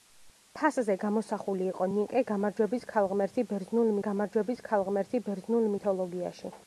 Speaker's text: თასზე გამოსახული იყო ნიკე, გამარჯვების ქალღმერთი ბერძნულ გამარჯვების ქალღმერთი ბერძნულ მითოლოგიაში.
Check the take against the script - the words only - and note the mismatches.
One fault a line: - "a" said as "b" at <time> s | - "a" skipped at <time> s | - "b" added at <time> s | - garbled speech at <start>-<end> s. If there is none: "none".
none